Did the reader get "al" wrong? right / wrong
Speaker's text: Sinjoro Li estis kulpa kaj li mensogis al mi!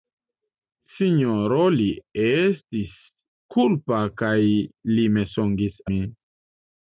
wrong